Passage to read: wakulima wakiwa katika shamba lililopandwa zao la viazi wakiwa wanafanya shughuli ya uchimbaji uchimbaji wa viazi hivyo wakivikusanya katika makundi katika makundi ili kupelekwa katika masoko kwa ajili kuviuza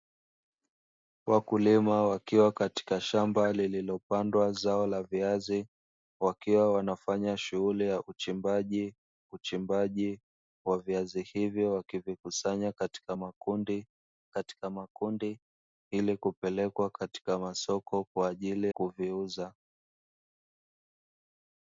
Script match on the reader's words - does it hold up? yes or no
yes